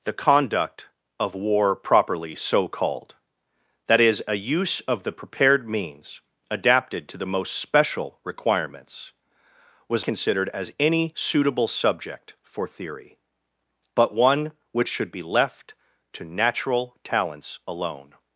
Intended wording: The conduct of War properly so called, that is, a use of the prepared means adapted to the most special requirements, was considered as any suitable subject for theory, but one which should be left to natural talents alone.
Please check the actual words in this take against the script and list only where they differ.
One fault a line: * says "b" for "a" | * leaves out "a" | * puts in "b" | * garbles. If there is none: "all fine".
all fine